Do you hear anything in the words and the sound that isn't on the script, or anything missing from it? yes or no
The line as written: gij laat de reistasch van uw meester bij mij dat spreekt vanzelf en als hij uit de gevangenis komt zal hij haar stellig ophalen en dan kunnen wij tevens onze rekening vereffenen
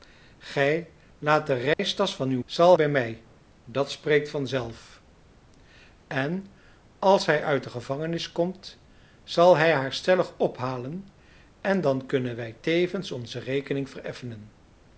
yes